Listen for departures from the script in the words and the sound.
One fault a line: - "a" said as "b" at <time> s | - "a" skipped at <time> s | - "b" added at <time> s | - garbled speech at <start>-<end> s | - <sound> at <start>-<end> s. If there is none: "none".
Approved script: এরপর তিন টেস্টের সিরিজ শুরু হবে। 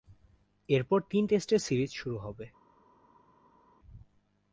none